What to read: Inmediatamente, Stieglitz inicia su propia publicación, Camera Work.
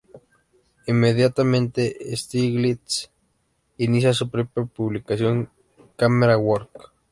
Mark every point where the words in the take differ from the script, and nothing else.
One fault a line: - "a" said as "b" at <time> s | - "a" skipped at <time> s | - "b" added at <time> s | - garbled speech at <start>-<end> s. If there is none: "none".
none